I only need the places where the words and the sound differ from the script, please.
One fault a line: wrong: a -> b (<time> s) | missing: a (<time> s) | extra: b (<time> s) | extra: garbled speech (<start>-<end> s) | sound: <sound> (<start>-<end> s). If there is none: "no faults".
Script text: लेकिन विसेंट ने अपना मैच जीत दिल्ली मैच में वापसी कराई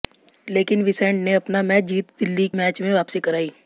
no faults